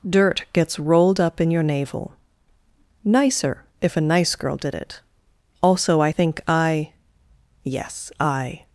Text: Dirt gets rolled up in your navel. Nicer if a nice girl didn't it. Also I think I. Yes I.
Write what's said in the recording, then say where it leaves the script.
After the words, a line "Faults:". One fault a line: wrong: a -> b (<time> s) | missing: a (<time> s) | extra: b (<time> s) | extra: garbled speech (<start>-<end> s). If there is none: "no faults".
Dirt gets rolled up in your navel. Nicer if a nice girl did it. Also I think I. Yes I.
Faults:
wrong: didn't -> did (4.6 s)